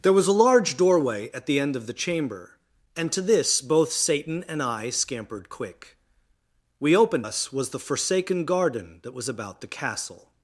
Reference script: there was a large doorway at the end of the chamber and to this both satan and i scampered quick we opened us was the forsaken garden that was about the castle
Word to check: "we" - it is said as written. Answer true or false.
true